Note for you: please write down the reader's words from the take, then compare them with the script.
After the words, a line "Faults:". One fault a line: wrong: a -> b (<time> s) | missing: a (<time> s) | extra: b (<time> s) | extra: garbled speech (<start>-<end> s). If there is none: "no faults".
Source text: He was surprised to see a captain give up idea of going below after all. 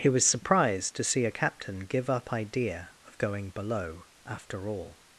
He was surprised to see a captain give up idea of going below after all.
Faults:
no faults